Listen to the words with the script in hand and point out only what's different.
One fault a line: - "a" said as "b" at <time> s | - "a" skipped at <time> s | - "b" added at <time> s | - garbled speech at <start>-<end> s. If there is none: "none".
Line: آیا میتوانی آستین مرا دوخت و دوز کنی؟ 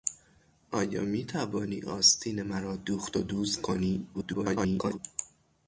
- garbled speech at 4.1-5.0 s